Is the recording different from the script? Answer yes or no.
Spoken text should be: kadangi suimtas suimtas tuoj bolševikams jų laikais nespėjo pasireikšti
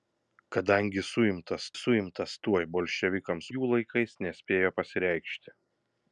no